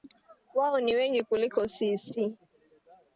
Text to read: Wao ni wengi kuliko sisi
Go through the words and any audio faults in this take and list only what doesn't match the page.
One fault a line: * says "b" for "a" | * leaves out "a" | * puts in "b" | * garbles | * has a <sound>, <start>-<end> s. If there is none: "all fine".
all fine